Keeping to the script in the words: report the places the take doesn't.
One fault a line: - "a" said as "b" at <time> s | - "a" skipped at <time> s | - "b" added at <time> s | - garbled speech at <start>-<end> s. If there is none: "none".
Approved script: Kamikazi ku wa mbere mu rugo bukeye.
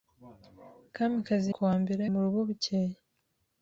none